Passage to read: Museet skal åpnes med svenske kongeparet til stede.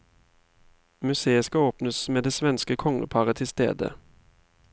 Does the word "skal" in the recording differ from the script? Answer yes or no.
no